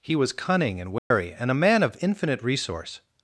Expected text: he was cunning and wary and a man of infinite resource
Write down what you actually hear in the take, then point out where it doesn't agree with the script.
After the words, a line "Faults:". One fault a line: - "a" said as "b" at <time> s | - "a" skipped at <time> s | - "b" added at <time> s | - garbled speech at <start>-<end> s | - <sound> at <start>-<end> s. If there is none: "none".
he was cunning and wary and a man of infinite resource
Faults:
- dropout at 1.0-1.1 s